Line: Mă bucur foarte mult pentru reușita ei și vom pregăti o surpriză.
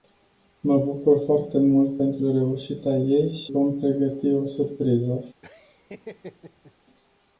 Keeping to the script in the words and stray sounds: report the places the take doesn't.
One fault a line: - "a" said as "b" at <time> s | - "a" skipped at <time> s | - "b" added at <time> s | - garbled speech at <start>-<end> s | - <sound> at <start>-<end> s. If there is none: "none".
- laugh at 5.4-6.7 s